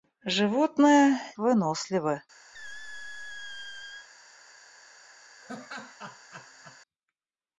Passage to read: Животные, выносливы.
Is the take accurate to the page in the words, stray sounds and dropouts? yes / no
no